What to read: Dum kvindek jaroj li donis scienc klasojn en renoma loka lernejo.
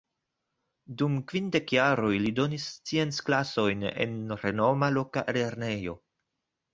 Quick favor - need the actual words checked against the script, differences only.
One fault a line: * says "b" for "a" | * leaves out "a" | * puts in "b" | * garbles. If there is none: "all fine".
all fine